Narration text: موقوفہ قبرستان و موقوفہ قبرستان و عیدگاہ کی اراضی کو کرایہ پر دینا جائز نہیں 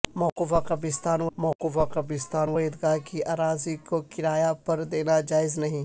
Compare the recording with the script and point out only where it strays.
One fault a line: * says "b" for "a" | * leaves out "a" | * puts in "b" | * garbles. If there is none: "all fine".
all fine